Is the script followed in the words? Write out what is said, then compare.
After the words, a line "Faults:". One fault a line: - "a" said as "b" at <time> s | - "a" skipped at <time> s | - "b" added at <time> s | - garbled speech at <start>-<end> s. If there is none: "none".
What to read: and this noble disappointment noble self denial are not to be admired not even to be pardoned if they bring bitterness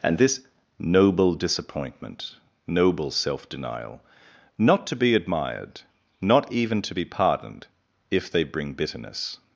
and this noble disappointment noble self denial not to be admired not even to be pardoned if they bring bitterness
Faults:
- "are" skipped at 4.0 s